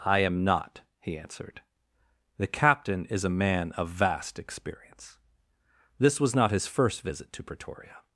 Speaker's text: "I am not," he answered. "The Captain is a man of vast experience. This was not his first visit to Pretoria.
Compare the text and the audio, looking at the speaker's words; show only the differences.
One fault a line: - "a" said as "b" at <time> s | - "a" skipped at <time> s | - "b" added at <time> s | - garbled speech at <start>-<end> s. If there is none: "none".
none